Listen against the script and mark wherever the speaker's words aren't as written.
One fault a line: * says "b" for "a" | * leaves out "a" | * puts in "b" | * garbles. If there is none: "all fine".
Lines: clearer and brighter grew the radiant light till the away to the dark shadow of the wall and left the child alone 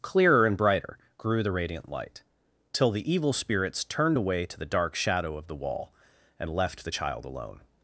* puts in "evil spirits turned"